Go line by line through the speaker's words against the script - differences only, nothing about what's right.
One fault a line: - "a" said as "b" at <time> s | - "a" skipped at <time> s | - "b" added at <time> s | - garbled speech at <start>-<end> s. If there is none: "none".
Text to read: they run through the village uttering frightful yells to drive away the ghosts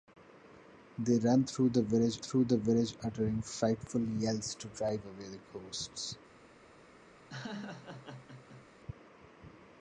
- "through the village" added at 2.2 s